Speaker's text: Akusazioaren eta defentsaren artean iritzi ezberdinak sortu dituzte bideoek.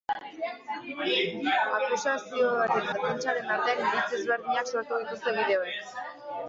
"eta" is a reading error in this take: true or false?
true